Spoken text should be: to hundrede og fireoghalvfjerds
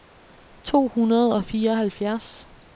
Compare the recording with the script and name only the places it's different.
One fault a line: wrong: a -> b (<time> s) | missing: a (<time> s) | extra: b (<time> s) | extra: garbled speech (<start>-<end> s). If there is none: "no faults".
no faults